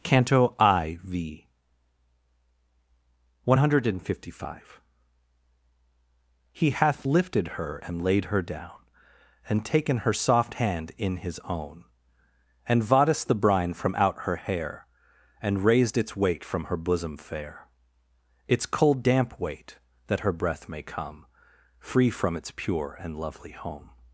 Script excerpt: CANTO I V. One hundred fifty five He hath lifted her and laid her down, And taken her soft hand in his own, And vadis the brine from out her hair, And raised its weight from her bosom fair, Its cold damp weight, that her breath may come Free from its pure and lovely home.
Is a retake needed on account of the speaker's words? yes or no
no